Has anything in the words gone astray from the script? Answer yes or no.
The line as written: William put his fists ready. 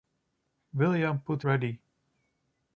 yes